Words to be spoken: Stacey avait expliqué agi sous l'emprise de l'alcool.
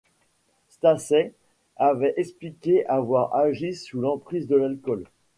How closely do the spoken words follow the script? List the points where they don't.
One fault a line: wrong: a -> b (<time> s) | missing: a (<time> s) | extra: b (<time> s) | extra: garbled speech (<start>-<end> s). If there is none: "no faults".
extra: avoir (2.9 s)